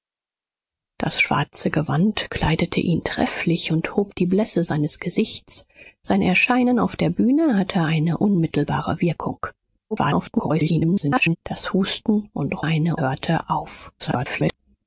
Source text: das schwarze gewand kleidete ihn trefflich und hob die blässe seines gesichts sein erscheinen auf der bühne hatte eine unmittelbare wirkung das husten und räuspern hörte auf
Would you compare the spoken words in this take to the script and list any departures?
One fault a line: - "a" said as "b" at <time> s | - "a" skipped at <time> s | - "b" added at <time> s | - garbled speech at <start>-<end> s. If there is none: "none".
- garbled speech at 9.9-11.4 s
- "räuspern" said as "eine" at 12.6 s
- garbled speech at 14.0-14.5 s